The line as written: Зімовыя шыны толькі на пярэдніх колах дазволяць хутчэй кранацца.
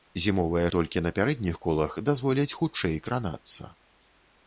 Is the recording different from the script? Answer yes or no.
yes